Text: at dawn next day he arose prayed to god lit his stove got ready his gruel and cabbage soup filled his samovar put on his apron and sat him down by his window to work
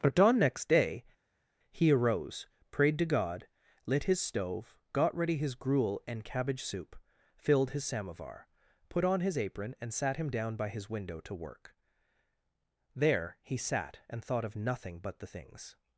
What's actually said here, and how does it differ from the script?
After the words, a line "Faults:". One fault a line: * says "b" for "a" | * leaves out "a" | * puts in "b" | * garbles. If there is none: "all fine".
at dawn next day he arose prayed to god lit his stove got ready his gruel and cabbage soup filled his samovar put on his apron and sat him down by his window to work there he sat and thought of nothing but the things
Faults:
* puts in "there he sat and thought of nothing but the things"